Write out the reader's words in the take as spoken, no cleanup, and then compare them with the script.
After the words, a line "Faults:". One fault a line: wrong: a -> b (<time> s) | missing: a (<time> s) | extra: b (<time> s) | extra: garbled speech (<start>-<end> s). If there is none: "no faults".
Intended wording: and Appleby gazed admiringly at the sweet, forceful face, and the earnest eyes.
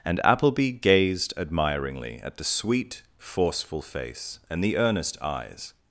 and Appleby gazed admiringly at the sweet, forceful face, and the earnest eyes.
Faults:
no faults